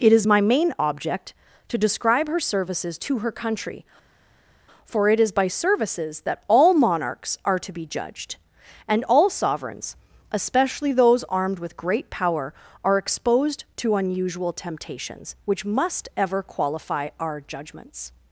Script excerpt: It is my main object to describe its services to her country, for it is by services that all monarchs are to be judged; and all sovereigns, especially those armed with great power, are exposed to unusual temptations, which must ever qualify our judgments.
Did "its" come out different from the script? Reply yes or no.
yes